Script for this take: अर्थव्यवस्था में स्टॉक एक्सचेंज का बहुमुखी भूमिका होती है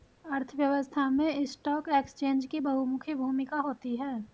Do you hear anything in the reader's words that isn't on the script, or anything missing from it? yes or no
yes